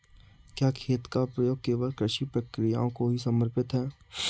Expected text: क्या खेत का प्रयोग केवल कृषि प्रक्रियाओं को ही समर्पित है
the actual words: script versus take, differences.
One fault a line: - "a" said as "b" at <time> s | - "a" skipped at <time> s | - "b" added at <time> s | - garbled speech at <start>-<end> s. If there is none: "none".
none